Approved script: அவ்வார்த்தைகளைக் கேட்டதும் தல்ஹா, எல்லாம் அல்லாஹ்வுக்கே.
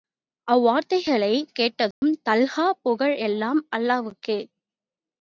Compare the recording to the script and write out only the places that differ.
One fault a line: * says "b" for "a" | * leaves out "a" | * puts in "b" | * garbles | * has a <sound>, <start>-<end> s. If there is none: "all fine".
* has a dropout, 1.9-2.0 s
* puts in "புகழ்"